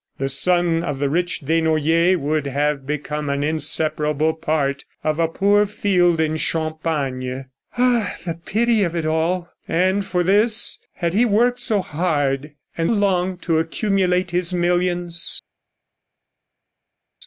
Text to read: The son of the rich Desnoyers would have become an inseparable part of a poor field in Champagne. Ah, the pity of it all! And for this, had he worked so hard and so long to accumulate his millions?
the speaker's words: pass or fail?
fail